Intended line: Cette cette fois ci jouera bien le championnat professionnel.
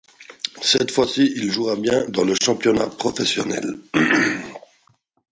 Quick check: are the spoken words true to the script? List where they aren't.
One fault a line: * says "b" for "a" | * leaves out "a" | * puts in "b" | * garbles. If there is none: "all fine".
* leaves out "cette"
* puts in "il"
* puts in "dans"